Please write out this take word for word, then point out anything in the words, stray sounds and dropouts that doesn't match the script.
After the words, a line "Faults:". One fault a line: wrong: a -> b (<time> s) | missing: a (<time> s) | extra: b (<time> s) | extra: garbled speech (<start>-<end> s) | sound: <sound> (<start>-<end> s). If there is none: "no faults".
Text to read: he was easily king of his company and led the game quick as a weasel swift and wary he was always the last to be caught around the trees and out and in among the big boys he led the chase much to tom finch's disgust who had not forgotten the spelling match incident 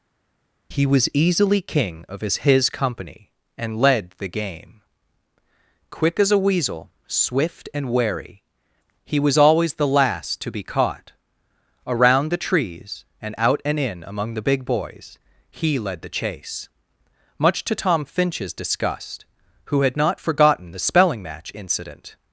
he was easily king of his his company and led the game quick as a weasel swift and wary he was always the last to be caught around the trees and out and in among the big boys he led the chase much to tom finch's disgust who had not forgotten the spelling match incident
Faults:
extra: his (2.5 s)